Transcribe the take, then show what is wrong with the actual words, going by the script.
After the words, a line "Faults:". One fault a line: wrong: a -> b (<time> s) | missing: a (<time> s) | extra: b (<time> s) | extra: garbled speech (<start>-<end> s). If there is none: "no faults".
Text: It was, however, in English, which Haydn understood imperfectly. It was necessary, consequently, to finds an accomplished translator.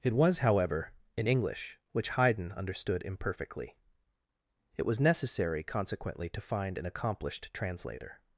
It was, however, in English, which Haydn understood imperfectly. It was necessary, consequently, to find an accomplished translator.
Faults:
wrong: finds -> find (6.4 s)